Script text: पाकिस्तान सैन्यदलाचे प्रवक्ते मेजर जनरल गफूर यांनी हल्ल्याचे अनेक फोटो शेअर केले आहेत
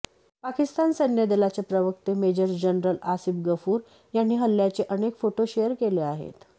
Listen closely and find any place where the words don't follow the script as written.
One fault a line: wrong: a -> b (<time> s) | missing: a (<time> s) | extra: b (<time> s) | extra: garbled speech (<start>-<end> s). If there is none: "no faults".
extra: आसिफ (3.1 s)